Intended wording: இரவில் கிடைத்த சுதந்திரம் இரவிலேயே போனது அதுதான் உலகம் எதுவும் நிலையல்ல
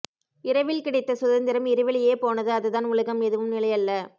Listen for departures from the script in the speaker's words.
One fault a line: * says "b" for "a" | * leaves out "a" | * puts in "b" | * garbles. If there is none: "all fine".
all fine